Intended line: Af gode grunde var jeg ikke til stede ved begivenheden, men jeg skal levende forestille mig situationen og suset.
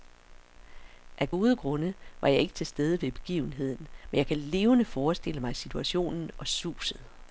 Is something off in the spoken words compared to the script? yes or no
yes